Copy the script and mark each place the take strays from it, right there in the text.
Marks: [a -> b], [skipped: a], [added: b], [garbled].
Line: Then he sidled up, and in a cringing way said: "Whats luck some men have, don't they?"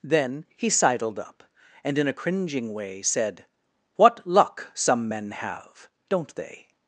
Then he sidled up, and in a cringing way said: ["Whats -> What] luck some men have, don't they?"